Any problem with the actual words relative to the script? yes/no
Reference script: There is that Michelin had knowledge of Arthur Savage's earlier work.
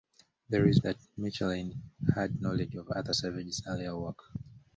no